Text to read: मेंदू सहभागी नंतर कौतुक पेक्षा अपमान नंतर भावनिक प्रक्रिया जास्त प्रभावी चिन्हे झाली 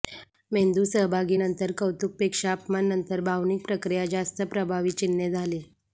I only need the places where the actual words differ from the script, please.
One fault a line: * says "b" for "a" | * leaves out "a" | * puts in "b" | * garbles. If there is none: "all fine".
all fine